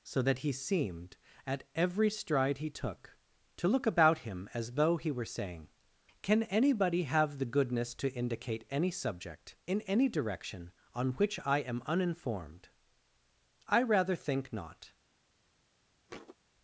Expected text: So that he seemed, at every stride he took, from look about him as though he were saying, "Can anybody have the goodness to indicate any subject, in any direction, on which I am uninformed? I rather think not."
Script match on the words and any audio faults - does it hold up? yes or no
no